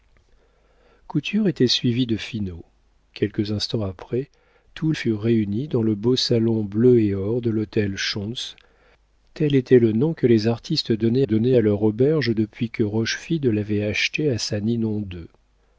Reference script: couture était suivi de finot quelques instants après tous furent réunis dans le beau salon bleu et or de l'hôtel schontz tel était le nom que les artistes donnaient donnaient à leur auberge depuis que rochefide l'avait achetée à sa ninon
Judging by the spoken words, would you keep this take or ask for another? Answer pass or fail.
pass